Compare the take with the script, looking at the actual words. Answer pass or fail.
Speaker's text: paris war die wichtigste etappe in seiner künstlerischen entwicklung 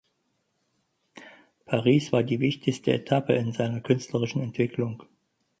pass